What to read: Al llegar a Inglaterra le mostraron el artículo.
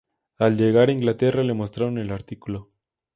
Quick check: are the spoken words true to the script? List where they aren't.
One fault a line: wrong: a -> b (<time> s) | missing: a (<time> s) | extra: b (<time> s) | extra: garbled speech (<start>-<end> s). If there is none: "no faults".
no faults